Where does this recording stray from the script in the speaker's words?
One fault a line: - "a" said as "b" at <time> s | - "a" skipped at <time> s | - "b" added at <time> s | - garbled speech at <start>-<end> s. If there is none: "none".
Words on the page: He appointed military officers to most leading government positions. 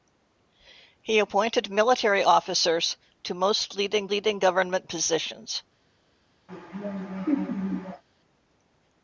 - "leading" added at 4.1 s